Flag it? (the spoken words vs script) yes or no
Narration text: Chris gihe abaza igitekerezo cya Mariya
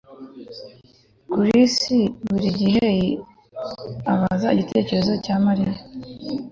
yes